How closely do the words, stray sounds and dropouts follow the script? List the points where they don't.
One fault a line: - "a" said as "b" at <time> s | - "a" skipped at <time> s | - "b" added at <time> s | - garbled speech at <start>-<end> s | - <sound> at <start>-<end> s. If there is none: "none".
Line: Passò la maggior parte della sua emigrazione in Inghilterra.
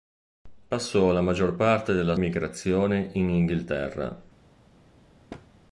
- "sua" skipped at 2.1 s
- thud at 5.3-5.5 s